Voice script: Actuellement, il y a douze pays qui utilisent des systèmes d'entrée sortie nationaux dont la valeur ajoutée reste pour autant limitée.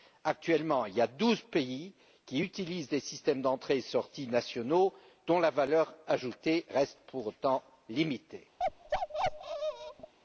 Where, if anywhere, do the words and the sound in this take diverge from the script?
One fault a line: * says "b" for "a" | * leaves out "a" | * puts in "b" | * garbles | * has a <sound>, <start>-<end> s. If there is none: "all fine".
* has a bark, 8.6-10.1 s